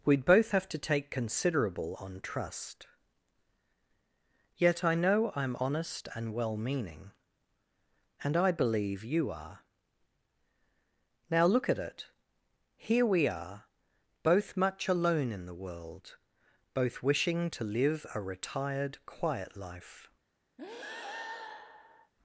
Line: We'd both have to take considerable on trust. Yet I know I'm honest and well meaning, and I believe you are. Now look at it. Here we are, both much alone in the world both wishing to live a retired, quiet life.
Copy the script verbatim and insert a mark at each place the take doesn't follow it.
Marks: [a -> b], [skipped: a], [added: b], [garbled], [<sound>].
We'd both have to take considerable on trust. Yet I know I'm honest and well meaning, and I believe you are. Now look at it. Here we are, both much alone in the world both wishing to live a retired, quiet life. [breath]